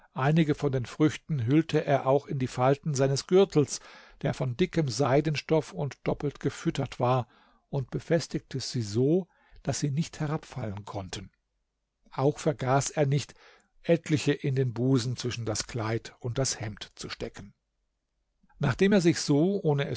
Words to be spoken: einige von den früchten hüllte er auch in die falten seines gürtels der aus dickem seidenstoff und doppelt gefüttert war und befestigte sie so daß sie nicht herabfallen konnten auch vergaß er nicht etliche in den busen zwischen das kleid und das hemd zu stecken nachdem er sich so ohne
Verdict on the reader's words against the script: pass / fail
fail